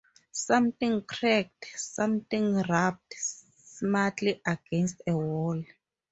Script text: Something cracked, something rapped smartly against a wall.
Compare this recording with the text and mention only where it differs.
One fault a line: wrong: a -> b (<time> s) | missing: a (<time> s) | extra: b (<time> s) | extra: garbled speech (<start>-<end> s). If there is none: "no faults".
no faults